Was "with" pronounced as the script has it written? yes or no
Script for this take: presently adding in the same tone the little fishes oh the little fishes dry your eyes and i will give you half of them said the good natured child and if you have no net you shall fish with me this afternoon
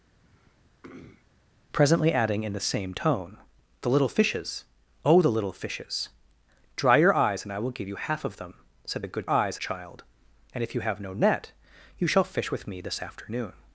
yes